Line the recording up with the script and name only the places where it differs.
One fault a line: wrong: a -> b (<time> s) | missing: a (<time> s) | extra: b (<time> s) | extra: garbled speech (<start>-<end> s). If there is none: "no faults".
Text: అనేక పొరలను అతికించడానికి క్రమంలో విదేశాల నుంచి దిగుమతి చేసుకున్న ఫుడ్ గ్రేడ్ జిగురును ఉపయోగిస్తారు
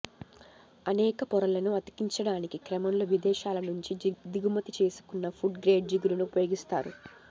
no faults